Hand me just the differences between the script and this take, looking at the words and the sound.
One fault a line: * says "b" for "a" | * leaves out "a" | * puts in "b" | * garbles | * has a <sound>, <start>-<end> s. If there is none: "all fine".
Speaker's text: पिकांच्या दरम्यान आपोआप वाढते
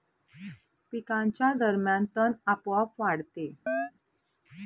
* puts in "तण"
* has a chirp, 3.7-3.9 s